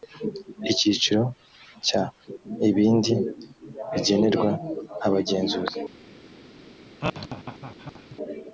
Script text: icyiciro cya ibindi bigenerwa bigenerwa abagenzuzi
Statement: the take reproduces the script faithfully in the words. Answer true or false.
false